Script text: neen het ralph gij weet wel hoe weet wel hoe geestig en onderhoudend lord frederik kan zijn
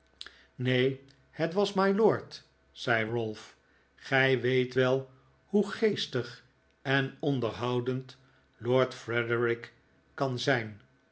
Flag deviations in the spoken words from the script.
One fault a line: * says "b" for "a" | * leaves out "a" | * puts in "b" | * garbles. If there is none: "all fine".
* says "was mylord zei ralph gij" for "ralph gij weet wel hoe"